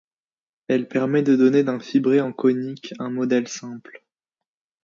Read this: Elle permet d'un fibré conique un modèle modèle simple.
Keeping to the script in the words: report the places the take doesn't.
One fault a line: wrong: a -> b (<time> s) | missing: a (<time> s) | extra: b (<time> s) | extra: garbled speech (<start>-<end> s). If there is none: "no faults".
extra: de donner (1.2 s)
extra: en (2.2 s)
missing: modèle (3.5 s)